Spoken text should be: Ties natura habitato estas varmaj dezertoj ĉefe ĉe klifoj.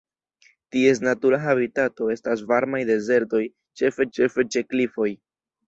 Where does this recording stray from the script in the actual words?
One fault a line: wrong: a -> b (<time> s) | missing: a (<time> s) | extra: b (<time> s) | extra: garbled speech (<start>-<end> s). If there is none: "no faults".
extra: ĉefe (4.2 s)